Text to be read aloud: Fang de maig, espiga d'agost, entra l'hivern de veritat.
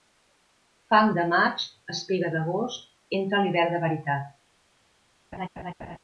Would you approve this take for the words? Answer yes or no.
yes